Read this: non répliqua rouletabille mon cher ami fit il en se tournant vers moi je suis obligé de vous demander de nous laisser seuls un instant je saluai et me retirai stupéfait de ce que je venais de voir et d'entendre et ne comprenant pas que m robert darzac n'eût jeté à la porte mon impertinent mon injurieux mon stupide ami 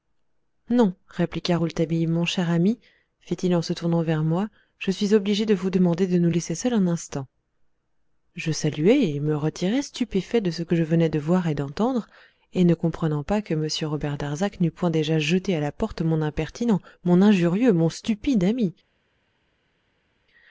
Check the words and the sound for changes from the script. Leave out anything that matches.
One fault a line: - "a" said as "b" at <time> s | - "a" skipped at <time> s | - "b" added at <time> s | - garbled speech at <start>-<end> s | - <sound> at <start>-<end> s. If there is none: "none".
- "point déjà" added at 14.7 s